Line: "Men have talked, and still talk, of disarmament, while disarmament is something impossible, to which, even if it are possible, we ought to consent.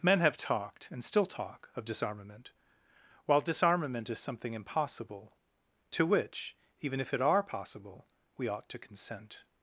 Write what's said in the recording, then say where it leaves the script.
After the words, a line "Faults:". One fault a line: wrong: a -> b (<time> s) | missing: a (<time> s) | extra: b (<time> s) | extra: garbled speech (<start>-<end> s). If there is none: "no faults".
"Men have talked, and still talk, of disarmament, while disarmament is something impossible, to which, even if it are possible, we ought to consent.
Faults:
no faults